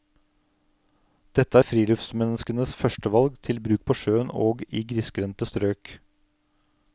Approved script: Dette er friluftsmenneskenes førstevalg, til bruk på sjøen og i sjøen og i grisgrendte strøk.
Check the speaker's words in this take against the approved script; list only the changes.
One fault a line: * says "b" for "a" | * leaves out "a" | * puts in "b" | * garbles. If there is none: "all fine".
* leaves out "sjøen og i"